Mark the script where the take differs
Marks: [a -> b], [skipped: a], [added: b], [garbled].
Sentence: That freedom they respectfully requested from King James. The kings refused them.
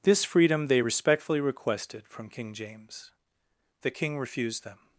[That -> This] freedom they respectfully requested from King James. The [kings -> king] refused them.